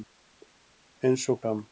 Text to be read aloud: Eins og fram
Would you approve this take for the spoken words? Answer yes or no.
yes